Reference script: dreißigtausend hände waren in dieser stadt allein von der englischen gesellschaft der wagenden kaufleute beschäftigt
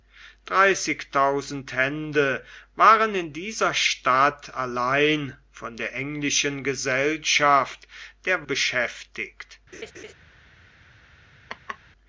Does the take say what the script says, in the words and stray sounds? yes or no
no